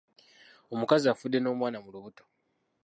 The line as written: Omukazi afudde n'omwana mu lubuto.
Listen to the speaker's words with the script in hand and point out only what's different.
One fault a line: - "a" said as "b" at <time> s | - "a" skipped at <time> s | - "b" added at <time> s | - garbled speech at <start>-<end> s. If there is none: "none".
none